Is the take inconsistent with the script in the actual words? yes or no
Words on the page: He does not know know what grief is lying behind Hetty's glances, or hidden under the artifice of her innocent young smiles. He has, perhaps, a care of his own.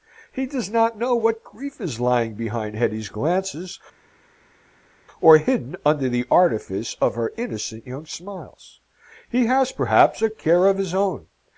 yes